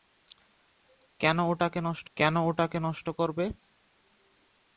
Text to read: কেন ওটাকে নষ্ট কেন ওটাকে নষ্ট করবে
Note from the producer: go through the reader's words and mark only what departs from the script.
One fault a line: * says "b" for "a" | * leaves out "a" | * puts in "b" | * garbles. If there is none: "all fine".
all fine